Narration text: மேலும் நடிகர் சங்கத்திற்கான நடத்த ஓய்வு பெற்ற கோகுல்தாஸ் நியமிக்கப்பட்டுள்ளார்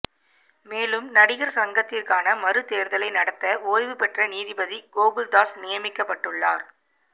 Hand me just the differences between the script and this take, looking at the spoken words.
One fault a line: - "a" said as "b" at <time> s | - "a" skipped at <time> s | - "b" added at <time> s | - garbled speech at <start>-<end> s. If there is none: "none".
- "மறு தேர்தலை" added at 2.4 s
- "நீதிபதி" added at 4.3 s